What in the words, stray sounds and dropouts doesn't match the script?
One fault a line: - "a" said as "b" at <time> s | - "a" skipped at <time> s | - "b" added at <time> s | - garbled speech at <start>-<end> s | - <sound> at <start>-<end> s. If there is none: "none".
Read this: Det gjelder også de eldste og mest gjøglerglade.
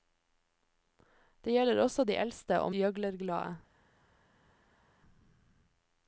- "mest" skipped at 2.7 s